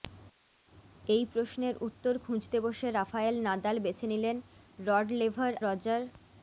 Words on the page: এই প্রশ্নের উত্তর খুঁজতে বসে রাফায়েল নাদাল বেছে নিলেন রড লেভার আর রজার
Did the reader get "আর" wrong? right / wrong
wrong